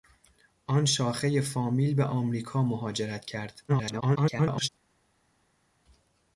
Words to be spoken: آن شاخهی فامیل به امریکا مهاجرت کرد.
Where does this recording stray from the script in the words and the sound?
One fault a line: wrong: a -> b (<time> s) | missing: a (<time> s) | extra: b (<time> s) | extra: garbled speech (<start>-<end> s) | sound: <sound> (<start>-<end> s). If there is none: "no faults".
extra: garbled speech (3.7-4.7 s)